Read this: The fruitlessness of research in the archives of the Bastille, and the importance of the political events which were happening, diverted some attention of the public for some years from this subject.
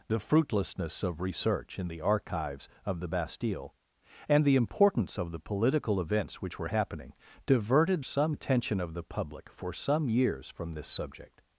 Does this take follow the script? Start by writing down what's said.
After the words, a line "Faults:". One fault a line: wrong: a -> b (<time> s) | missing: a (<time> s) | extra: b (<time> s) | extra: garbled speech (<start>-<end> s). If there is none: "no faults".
The fruitlessness of research in the archives of the Bastille, and the importance of the political events which were happening, diverted some attention of the public for some years from this subject.
Faults:
no faults